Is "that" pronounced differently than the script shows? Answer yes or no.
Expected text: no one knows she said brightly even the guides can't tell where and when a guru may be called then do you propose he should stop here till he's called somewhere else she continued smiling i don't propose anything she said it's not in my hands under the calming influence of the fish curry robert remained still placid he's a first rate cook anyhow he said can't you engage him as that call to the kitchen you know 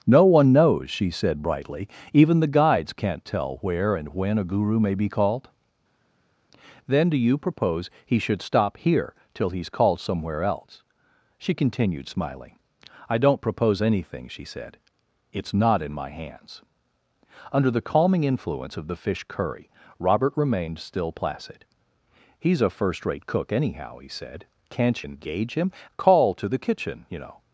yes